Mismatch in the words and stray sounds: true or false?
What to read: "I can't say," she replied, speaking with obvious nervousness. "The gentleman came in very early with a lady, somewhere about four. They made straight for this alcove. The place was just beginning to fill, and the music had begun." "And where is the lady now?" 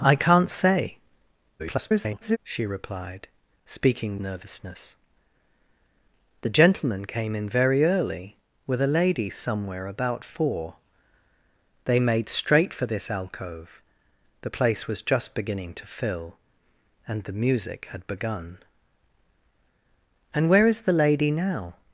true